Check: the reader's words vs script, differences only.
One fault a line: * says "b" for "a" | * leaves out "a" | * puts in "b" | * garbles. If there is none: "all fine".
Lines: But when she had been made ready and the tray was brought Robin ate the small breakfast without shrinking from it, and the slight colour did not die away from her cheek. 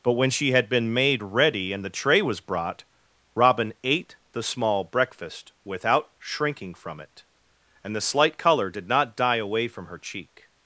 all fine